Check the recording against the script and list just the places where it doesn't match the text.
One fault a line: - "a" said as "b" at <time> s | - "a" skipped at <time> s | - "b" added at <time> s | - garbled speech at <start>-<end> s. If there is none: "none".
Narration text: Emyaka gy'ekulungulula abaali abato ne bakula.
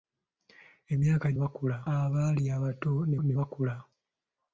- "gy'ekulungulula" said as "bakula" at 1.4 s
- "ne" added at 3.2 s